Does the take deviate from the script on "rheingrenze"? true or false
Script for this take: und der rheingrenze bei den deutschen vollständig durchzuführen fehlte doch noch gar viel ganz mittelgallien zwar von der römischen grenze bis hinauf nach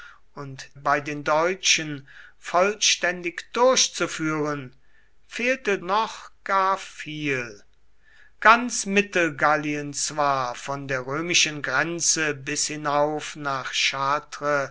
true